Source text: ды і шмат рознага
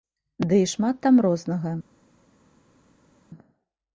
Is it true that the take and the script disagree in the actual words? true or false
true